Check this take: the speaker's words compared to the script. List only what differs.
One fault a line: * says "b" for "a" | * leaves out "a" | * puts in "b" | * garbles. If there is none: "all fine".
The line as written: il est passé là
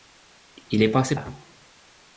all fine